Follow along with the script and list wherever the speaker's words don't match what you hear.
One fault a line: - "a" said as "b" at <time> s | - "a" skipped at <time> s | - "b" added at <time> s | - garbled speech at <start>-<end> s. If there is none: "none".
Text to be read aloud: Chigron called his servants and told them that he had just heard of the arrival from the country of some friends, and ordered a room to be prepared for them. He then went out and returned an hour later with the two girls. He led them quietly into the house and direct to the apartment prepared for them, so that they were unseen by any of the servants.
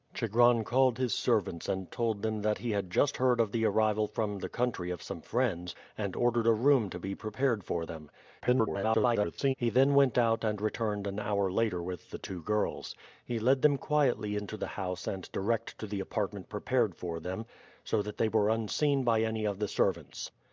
- garbled speech at 8.4-9.5 s